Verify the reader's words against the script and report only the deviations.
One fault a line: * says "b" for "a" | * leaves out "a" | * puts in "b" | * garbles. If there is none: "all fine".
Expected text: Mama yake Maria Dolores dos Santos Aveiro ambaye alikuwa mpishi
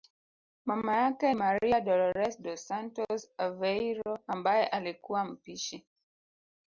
all fine